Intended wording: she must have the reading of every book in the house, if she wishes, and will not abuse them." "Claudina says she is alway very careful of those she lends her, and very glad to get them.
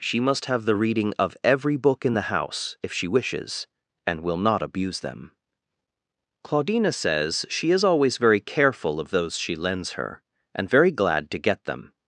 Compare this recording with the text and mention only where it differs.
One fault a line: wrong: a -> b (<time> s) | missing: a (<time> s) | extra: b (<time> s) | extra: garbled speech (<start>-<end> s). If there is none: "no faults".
wrong: alway -> always (7.8 s)